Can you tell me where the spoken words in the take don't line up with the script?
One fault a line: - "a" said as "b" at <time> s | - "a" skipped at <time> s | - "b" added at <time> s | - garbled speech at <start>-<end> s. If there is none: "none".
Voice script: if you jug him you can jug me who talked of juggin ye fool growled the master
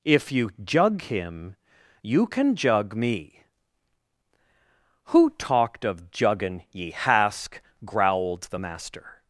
- "fool" said as "hask" at 6.9 s